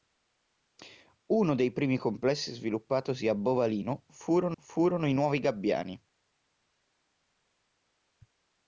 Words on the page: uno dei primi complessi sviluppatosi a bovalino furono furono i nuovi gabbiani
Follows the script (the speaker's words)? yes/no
yes